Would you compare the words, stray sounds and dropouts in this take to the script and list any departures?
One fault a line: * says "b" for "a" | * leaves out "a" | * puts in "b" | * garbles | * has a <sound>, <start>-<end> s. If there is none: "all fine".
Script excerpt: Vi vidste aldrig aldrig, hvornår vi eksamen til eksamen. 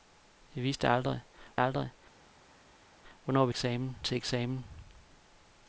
all fine